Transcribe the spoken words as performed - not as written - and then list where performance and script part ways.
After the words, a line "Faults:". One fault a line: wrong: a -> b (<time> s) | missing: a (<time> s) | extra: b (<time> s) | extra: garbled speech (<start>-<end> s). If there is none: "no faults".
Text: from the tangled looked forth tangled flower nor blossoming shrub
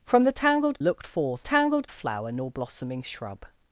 from the tangled looked forth tangled flower nor blossoming shrub
Faults:
no faults